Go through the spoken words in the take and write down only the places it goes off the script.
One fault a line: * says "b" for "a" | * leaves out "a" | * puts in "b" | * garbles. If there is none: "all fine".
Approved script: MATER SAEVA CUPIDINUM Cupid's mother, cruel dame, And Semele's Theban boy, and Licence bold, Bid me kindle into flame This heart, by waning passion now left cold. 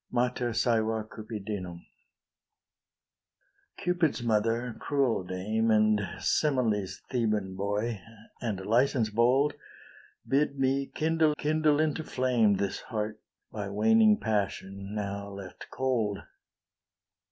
* puts in "kindle"